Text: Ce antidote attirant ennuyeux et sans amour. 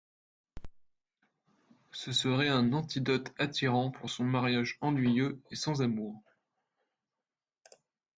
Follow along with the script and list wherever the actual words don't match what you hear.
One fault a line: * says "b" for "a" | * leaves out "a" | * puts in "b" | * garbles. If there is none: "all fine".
* puts in "serait un"
* puts in "pour son mariage"